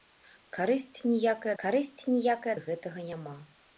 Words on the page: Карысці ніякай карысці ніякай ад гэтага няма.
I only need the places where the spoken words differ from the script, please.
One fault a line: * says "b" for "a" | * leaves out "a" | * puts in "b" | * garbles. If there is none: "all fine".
all fine